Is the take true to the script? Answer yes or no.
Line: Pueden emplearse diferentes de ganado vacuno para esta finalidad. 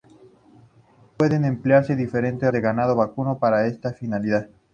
yes